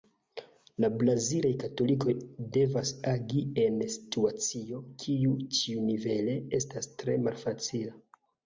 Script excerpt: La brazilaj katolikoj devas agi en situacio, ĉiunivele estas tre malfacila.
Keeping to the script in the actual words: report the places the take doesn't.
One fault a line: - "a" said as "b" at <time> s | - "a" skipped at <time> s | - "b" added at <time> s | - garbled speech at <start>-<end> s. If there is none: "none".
- "kiu" added at 5.0 s